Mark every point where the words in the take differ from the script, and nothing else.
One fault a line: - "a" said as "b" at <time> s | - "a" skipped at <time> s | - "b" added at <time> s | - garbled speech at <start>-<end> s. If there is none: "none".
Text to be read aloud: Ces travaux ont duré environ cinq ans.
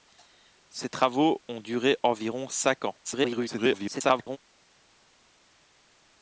- garbled speech at 3.0-4.4 s